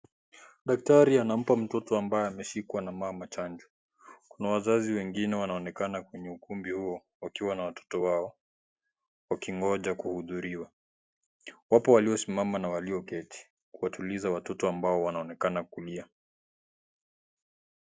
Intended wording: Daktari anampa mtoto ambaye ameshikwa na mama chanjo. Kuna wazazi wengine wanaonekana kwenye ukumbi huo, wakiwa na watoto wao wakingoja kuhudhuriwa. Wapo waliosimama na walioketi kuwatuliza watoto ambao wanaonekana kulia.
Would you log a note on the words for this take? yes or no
no